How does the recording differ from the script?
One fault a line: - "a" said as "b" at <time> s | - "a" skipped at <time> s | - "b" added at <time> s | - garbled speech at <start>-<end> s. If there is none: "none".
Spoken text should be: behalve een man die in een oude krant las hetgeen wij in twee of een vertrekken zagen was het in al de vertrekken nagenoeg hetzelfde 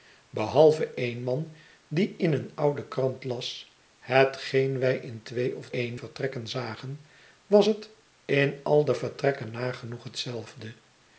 none